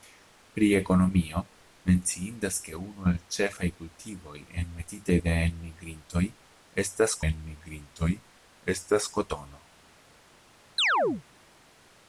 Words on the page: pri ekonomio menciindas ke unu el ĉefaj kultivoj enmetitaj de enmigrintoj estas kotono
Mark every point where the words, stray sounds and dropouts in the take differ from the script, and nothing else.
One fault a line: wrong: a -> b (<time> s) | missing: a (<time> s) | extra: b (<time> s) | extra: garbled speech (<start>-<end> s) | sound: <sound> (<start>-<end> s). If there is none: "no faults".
extra: enmigrintoj estas (7.3 s)
sound: chirp (10.8-11.2 s)